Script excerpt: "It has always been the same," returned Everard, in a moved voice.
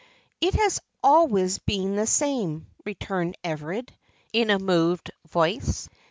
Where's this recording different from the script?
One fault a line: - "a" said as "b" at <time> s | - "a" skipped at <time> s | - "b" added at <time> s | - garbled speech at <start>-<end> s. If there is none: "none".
none